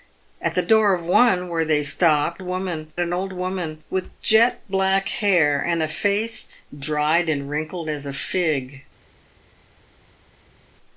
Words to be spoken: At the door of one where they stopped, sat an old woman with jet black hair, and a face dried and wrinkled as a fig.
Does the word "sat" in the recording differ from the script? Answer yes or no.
yes